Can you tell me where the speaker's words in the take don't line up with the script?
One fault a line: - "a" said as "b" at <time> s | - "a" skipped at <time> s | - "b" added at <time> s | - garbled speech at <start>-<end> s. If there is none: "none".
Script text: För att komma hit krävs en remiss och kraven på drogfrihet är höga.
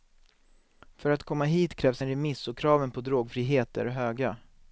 none